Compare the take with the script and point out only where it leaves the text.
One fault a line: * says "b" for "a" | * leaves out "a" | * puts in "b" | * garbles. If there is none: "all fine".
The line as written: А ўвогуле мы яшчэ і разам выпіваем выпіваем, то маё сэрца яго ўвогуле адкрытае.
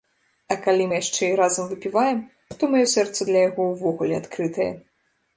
* says "калі" for "ўвогуле"
* leaves out "выпіваем"
* puts in "для"